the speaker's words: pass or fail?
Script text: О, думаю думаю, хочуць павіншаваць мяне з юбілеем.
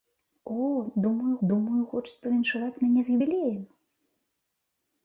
pass